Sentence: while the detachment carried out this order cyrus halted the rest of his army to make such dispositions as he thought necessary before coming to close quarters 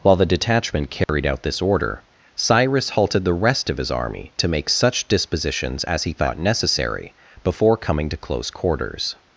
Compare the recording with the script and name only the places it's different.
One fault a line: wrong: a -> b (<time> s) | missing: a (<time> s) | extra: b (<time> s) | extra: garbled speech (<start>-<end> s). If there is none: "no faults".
no faults